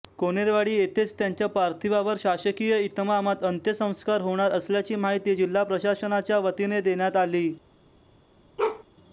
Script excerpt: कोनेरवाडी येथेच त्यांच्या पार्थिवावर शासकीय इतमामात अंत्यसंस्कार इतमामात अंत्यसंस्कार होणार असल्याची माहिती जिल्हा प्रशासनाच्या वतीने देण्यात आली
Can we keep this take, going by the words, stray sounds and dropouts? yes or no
no